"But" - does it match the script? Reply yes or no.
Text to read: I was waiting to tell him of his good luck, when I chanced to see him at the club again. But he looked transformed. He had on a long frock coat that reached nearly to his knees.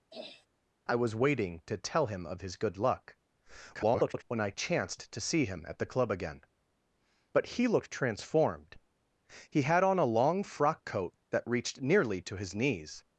yes